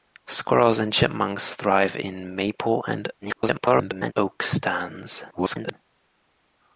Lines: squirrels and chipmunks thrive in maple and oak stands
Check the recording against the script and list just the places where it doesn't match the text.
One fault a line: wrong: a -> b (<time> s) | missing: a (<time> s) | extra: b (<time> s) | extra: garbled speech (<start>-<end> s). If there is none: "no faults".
extra: garbled speech (3.2-4.1 s)
extra: garbled speech (5.3-5.7 s)